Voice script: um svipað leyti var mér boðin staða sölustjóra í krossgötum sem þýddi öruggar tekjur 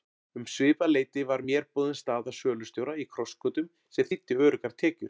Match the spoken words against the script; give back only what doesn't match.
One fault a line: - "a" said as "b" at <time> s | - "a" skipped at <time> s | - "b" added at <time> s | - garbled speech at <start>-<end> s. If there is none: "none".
none